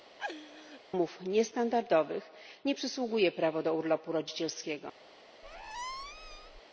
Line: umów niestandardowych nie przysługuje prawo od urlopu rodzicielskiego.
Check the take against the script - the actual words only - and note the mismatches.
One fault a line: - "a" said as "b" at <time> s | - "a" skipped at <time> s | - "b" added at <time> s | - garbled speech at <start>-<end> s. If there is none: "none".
- "od" said as "do" at 3.6 s